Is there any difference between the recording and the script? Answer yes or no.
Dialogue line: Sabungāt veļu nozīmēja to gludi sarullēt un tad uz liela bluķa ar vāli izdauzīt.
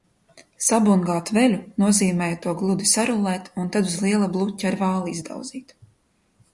no